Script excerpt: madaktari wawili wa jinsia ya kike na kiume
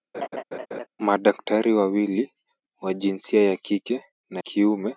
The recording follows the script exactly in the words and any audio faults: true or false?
false